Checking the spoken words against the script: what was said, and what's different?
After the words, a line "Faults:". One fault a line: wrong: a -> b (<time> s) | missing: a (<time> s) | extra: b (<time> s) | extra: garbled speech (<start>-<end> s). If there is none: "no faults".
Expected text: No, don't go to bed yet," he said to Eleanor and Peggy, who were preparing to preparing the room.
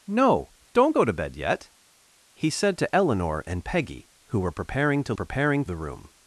No, don't go to bed yet," he said to Eleanor and Peggy, who were preparing to preparing the room.
Faults:
no faults